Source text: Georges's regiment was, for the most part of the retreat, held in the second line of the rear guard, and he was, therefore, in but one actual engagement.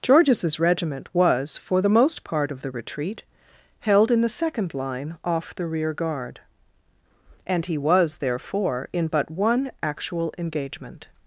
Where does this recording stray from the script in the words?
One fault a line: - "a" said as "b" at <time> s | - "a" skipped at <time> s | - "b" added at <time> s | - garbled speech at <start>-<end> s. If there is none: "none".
- "of" said as "off" at 5.2 s